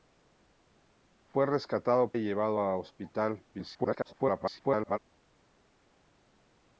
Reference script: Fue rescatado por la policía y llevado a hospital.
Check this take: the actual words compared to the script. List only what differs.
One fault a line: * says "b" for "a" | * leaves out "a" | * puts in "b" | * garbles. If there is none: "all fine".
* leaves out "por la policía"
* garbles